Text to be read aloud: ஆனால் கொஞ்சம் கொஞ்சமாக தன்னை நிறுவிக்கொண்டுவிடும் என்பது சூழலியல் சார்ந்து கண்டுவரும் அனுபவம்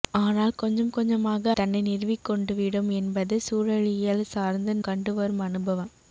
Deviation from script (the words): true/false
false